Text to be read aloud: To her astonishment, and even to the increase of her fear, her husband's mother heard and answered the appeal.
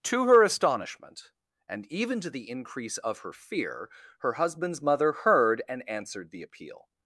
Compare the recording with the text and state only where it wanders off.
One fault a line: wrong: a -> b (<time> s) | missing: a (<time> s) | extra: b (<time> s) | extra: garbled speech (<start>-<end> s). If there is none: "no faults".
no faults